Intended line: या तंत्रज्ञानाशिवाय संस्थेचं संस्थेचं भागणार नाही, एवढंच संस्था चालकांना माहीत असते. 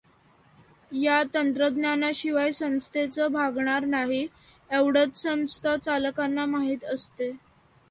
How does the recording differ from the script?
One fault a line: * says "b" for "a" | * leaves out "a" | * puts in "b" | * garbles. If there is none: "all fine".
* leaves out "संस्थेचं"